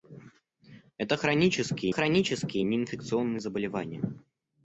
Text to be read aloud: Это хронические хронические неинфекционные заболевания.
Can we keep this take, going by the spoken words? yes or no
yes